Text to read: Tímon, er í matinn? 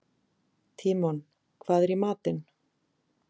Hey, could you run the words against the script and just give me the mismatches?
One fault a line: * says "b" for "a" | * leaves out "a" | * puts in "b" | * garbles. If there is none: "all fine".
* puts in "hvað"